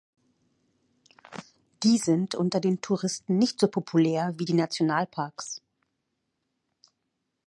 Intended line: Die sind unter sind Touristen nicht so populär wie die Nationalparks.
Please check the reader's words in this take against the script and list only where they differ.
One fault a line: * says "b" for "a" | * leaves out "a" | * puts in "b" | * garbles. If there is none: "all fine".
* says "den" for "sind"